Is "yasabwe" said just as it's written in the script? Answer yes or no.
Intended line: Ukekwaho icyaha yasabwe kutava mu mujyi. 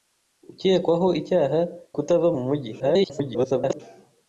no